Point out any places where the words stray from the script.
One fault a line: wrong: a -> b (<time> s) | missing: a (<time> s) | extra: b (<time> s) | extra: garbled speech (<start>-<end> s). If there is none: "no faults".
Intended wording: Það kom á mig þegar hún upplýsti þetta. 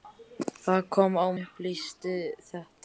missing: mig þegar hún (1.3 s)